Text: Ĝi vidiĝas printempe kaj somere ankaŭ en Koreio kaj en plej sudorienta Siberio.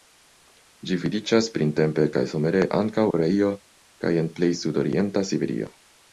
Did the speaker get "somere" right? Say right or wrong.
right